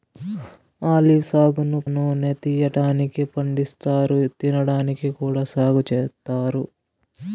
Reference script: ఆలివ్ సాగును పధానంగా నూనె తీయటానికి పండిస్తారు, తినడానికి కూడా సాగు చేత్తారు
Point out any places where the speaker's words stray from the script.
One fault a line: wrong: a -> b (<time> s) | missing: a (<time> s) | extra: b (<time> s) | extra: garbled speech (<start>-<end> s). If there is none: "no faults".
missing: పధానంగా (1.8 s)